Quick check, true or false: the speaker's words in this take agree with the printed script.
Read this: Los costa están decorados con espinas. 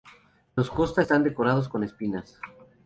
true